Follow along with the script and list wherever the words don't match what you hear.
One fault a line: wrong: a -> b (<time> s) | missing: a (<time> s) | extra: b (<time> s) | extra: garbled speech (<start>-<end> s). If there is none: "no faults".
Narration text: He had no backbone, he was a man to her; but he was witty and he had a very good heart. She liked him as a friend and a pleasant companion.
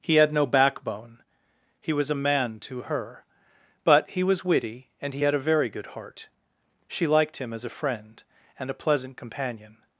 no faults